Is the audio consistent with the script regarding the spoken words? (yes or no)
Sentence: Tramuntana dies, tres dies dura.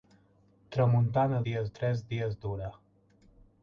yes